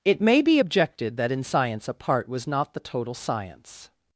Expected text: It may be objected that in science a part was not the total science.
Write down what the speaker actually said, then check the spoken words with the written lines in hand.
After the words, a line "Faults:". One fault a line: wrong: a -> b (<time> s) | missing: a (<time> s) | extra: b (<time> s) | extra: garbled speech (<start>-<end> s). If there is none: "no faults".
It may be objected that in science a part was not the total science.
Faults:
no faults